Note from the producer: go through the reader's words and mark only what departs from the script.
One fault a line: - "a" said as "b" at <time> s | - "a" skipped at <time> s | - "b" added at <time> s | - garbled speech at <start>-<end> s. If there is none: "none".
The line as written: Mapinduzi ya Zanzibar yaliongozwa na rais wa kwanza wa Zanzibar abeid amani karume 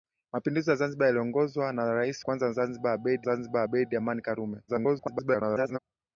- "kwanza" added at 2.2 s
- "kwanza wa" said as "Zanzibar abeid" at 2.5 s
- garbled speech at 4.7-5.8 s